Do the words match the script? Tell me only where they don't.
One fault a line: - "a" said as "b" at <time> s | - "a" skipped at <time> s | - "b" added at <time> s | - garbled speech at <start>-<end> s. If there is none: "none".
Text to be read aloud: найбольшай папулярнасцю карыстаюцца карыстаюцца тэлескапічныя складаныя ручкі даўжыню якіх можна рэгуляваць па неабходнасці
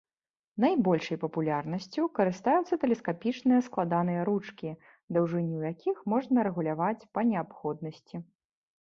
- "карыстаюцца" skipped at 2.8 s